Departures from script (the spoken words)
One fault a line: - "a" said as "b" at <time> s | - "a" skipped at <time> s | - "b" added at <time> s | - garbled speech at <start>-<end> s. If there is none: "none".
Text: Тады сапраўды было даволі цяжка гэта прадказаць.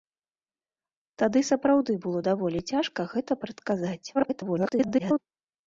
- garbled speech at 4.1-5.2 s